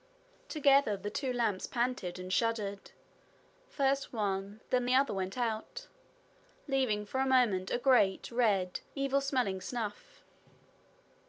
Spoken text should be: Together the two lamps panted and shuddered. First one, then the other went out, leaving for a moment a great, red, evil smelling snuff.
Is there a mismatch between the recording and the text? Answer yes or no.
no